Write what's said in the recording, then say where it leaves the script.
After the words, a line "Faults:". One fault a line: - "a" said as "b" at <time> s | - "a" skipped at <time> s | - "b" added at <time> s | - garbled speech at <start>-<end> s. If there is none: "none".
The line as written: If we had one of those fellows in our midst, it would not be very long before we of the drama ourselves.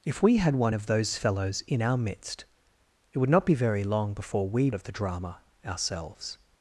If we had one of those fellows in our midst, it would not be very long before we of the drama ourselves.
Faults:
none